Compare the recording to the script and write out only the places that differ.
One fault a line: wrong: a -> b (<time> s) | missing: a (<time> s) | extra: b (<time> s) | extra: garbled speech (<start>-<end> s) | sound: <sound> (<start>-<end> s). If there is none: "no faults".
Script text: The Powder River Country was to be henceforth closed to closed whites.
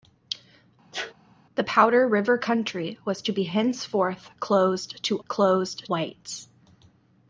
sound: sneeze (0.9-1.1 s)